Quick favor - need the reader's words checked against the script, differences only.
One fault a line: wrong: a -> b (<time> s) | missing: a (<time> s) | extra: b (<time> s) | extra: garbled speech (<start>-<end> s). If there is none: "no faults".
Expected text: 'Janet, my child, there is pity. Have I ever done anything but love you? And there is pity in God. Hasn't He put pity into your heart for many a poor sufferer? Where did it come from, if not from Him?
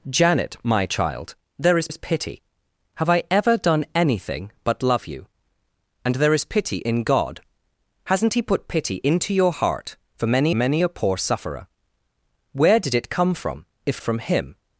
extra: is (1.9 s)
extra: many (10.5 s)
missing: not (14.0 s)